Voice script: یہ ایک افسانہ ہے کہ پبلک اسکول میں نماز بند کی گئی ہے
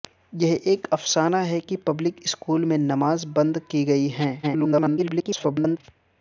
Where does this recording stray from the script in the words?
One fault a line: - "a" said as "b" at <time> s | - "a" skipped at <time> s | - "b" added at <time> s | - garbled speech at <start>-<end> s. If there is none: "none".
- garbled speech at 4.4-5.8 s